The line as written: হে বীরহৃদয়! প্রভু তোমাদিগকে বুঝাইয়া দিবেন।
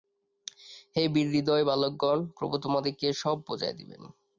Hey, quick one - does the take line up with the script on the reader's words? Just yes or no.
no